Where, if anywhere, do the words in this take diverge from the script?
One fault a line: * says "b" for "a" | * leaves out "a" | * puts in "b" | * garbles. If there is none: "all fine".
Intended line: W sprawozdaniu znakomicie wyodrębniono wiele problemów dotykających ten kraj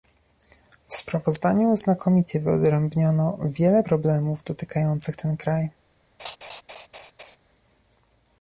all fine